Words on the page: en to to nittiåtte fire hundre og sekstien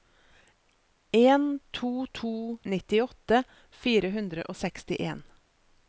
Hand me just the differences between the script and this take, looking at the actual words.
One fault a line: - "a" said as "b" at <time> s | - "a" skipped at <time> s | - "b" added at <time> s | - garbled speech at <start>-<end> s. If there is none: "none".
none